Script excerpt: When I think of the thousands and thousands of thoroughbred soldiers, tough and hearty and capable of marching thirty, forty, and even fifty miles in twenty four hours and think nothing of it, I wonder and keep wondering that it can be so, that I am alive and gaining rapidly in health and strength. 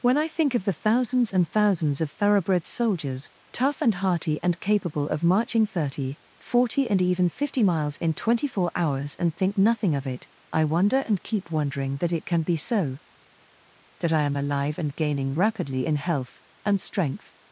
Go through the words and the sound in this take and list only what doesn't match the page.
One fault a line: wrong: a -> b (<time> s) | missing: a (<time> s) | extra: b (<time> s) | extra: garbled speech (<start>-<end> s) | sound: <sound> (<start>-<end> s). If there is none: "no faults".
no faults